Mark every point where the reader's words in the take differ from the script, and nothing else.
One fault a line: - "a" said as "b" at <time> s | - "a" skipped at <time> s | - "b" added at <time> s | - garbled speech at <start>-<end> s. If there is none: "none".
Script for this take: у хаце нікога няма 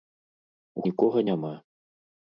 - "хаце" skipped at 0.9 s